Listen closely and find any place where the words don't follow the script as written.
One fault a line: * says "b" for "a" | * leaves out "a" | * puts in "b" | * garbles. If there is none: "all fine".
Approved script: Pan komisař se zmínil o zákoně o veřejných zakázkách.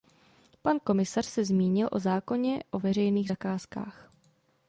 all fine